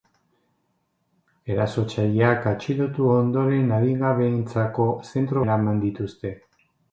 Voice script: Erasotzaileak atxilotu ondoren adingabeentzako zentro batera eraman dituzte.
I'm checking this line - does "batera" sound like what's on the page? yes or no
no